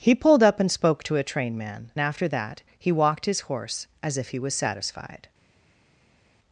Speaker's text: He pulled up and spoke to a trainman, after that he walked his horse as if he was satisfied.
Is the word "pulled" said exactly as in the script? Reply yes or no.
yes